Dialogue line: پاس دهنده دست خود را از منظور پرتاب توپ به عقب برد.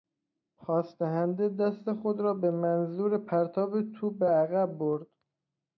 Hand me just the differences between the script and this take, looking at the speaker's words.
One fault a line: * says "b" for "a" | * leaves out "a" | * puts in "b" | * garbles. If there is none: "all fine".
* says "به" for "از"